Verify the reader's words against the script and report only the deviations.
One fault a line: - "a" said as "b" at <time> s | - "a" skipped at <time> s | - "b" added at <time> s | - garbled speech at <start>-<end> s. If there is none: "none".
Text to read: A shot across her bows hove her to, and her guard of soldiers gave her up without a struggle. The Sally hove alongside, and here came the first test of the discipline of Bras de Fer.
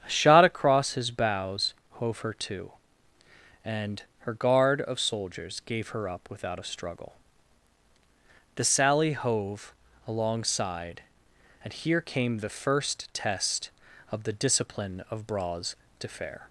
- "her" said as "his" at 0.9 s